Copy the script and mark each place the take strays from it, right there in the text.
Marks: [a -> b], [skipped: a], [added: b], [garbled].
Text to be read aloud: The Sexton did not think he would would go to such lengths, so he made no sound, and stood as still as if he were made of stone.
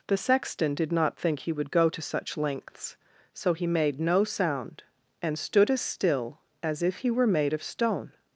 The Sexton did not think he would [skipped: would] go to such lengths, so he made no sound, and stood as still as if he were made of stone.